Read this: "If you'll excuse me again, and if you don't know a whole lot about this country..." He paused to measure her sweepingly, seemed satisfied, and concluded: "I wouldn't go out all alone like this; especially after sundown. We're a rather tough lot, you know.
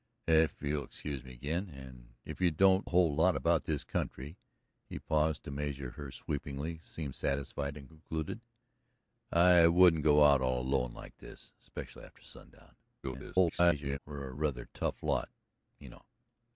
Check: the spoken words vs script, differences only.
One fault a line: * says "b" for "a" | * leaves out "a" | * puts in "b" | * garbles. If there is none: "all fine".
* leaves out "know"
* garbles